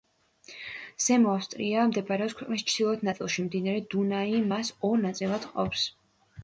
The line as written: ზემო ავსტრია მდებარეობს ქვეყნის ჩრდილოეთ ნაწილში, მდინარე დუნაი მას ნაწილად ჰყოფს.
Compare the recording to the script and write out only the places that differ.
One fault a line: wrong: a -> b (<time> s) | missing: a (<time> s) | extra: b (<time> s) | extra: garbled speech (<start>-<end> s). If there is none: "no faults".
extra: ორ (4.9 s)